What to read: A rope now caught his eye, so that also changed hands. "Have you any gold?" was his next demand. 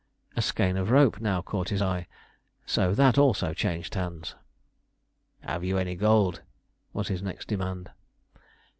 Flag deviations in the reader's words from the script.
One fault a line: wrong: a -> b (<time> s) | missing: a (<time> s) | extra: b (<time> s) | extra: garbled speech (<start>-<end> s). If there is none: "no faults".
extra: skein of (0.4 s)